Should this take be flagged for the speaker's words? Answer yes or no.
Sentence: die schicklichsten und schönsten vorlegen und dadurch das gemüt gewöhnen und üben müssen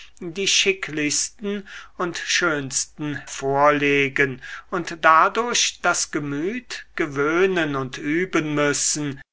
no